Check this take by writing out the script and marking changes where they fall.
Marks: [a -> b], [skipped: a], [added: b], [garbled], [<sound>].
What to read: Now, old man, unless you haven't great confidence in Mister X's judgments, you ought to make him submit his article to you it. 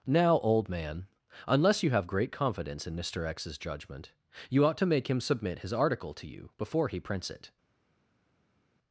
Now, old man, unless you [haven't -> have] great confidence in Mister X's [judgments, -> judgment] you ought to make him submit his article to you [added: before he prints] it.